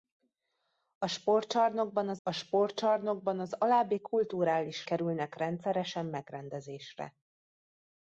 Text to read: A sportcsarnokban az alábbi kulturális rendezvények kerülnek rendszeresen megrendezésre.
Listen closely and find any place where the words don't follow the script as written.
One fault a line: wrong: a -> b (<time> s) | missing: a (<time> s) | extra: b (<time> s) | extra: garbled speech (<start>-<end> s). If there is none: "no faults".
extra: a sportcsarnokban az (2.2 s)
missing: rendezvények (4.9 s)